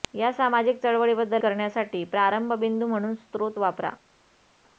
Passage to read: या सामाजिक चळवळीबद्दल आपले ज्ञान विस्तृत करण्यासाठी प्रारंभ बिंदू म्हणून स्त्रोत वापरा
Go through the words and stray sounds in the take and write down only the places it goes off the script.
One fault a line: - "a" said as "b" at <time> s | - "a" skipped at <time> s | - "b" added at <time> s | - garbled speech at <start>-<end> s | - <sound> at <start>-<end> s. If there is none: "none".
- "आपले ज्ञान विस्तृत" skipped at 1.4 s